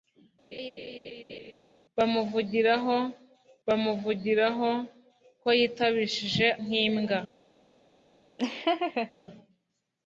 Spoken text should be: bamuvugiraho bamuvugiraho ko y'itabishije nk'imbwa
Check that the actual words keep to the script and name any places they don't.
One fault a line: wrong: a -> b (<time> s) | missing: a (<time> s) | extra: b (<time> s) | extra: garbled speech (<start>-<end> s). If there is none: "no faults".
no faults